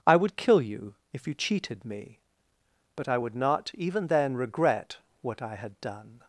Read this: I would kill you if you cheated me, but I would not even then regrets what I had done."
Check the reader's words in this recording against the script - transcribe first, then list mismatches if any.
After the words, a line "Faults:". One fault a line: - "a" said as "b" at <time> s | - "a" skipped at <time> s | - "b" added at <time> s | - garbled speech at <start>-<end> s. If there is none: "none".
I would kill you if you cheated me, but I would not even then regret what I had done."
Faults:
- "regrets" said as "regret" at 4.4 s